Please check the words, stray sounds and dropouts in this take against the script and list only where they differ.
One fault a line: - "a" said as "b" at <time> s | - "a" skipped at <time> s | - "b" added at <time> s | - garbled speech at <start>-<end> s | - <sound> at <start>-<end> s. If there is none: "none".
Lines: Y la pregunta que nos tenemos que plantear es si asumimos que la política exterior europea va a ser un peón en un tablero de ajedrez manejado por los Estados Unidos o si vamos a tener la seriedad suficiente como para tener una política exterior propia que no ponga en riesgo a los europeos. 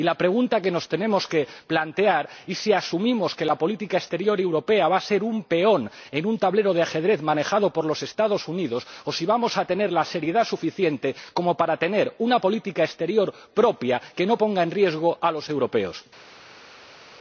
none